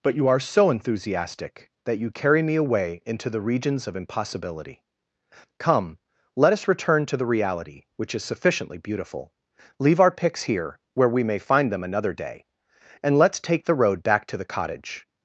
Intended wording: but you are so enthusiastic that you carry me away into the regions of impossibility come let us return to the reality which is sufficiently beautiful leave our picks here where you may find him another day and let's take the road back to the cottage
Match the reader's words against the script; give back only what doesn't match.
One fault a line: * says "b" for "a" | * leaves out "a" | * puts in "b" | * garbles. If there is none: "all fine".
* says "we" for "you"
* says "them" for "him"